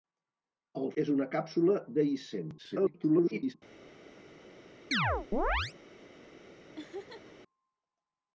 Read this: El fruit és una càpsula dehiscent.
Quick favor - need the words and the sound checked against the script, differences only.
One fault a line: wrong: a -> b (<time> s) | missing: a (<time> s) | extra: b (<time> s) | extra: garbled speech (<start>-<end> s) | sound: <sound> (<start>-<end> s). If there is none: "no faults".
missing: fruit (0.9 s)
extra: garbled speech (2.6-3.5 s)
sound: chirp (4.9-5.7 s)
sound: laugh (6.8-7.3 s)